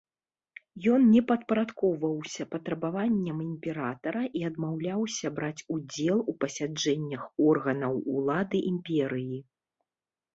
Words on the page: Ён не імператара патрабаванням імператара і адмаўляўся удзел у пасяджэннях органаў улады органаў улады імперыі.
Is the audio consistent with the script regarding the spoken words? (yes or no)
no